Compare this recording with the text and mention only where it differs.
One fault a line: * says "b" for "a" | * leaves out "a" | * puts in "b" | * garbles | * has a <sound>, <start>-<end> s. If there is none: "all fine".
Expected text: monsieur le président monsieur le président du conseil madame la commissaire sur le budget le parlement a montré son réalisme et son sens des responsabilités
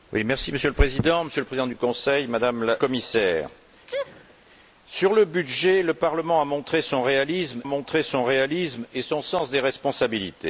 * leaves out "la"
* has a sneeze, 3.9-4.3 s
* puts in "montré son réalisme"